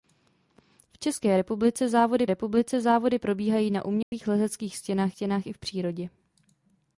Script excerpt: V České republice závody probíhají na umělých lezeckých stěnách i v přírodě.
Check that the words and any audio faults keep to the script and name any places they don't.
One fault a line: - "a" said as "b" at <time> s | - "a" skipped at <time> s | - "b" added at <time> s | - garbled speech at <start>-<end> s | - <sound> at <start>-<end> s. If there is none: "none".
- "republice závody" added at 2.3 s
- dropout at 4.0-4.1 s
- "stěnách" added at 5.1 s